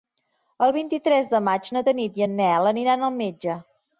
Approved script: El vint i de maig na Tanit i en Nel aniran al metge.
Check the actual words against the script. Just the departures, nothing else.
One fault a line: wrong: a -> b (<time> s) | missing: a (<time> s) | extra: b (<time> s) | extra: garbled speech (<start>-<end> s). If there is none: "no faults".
extra: tres (1.1 s)